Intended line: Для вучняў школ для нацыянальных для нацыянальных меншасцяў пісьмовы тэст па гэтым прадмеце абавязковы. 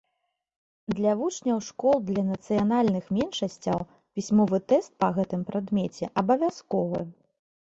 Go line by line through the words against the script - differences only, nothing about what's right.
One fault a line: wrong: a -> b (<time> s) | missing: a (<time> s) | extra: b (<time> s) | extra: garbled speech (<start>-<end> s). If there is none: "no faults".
missing: для нацыянальных (3.0 s)